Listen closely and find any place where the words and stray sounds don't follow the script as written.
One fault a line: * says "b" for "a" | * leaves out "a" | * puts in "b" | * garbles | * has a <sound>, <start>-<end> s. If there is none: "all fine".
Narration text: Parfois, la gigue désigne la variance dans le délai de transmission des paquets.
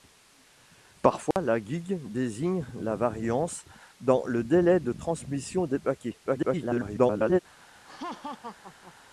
* has a dropout, 1.3-1.4 s
* garbles
* has a laugh, 7.8-8.9 s